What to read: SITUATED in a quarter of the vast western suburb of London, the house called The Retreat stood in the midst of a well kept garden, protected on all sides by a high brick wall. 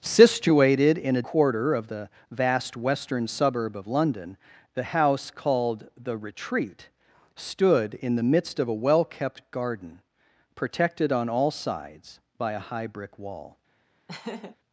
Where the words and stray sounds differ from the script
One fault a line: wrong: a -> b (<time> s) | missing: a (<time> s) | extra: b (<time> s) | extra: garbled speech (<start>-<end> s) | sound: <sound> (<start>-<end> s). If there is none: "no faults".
sound: laugh (14.1-14.6 s)